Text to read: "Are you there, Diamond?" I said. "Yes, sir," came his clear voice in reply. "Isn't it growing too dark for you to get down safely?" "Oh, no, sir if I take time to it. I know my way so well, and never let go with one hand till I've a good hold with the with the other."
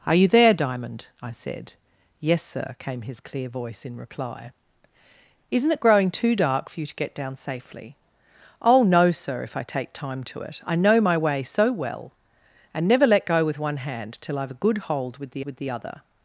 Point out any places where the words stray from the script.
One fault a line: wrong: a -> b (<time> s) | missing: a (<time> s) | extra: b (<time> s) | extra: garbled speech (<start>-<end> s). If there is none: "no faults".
no faults